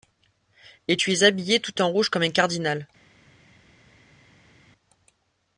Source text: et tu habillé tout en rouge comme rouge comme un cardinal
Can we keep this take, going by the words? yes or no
no